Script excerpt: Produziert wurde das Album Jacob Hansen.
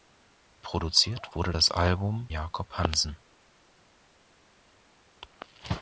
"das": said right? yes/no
yes